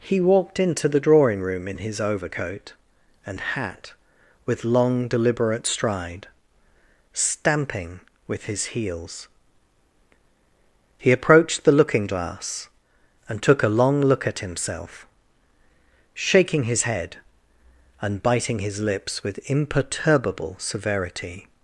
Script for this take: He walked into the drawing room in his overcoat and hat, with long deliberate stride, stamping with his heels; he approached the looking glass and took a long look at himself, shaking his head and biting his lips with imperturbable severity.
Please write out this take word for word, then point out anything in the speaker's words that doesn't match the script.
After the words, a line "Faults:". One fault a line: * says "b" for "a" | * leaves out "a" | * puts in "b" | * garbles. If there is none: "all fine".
He walked into the drawing room in his overcoat and hat, with long deliberate stride, stamping with his heels; he approached the looking glass and took a long look at himself, shaking his head and biting his lips with imperturbable severity.
Faults:
all fine